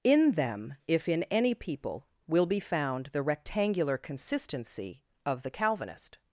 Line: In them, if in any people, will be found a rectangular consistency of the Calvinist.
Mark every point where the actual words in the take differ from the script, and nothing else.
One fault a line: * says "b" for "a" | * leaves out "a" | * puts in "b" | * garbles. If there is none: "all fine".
* says "the" for "a"